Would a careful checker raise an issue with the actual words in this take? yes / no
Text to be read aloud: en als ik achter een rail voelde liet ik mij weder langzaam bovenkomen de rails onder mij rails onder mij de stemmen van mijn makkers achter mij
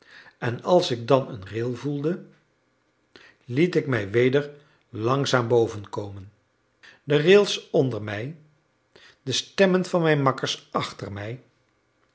yes